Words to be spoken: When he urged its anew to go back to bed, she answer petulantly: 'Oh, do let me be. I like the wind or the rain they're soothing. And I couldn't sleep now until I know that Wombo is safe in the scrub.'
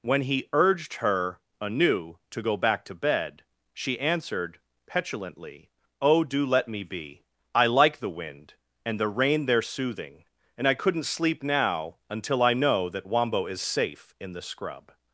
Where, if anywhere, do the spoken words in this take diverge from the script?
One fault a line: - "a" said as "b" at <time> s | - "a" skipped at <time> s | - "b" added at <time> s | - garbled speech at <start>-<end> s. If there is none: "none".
- "its" said as "her" at 0.9 s
- "answer" said as "answered" at 4.0 s
- "or" said as "and" at 8.8 s